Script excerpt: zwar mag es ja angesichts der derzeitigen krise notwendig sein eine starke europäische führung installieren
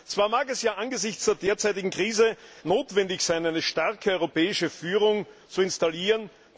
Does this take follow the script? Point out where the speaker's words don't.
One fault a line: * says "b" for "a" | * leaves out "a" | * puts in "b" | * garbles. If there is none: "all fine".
* puts in "zu"